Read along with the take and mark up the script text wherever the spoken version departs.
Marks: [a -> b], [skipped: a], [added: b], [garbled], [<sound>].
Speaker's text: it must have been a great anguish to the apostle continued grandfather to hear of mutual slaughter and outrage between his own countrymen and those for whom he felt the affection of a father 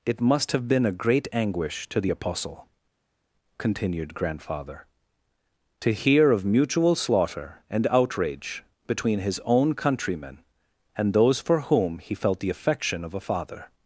it must have been a great anguish to the apostle continued grandfather to hear of mutual slaughter and outrage between his own countrymen and those for whom he felt the affection of a father